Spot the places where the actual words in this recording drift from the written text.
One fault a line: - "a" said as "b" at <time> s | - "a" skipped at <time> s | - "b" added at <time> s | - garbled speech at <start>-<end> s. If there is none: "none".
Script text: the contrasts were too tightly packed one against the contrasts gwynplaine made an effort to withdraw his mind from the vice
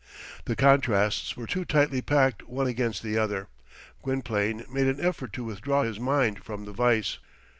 - "contrasts" said as "other" at 3.2 s